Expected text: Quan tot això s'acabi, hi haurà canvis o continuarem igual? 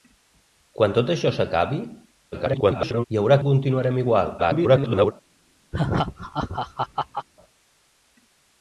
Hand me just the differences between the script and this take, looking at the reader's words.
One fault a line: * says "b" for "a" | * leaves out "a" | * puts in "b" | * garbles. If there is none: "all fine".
* garbles
* leaves out "canvis"
* garbles